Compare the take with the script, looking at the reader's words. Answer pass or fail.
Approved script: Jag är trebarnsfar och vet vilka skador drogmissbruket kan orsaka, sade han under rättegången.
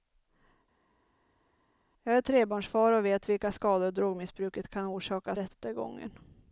fail